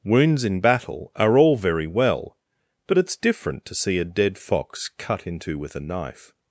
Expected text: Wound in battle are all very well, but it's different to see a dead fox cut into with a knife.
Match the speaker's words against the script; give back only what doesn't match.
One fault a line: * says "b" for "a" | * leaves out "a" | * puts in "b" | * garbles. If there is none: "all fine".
* says "Wounds" for "Wound"